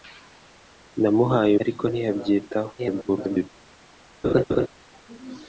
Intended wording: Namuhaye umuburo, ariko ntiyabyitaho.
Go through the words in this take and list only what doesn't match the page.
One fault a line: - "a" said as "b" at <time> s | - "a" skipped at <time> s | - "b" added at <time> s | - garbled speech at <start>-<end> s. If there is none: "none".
- "umuburo" skipped at 1.5 s
- garbled speech at 2.8-3.5 s